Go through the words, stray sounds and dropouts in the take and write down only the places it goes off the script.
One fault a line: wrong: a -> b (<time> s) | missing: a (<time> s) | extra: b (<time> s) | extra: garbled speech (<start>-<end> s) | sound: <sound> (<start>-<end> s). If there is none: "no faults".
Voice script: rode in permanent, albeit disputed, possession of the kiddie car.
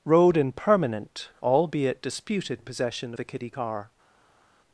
missing: of (3.1 s)